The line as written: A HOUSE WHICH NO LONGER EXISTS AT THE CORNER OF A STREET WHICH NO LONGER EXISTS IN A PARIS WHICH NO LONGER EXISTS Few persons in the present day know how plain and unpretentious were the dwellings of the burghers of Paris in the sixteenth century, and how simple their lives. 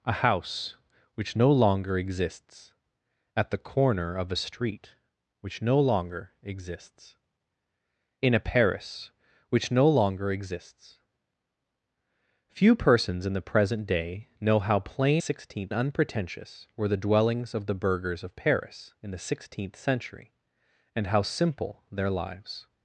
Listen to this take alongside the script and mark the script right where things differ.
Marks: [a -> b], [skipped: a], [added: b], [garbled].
A HOUSE WHICH NO LONGER EXISTS AT THE CORNER OF A STREET WHICH NO LONGER EXISTS IN A PARIS WHICH NO LONGER EXISTS Few persons in the present day know how plain [and -> sixteenth] unpretentious were the dwellings of the burghers of Paris in the sixteenth century, and how simple their lives.